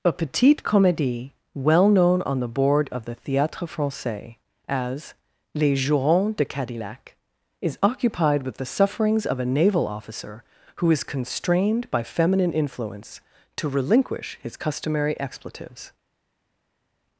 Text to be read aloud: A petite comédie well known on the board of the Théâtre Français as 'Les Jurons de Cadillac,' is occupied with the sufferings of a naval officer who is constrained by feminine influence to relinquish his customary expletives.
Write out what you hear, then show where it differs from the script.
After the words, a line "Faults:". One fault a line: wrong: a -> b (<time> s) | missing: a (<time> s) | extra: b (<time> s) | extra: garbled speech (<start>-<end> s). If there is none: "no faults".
A petite comédie well known on the board of the Théâtre Français as 'Les Jurons de Cadillac,' is occupied with the sufferings of a naval officer who is constrained by feminine influence to relinquish his customary expletives.
Faults:
no faults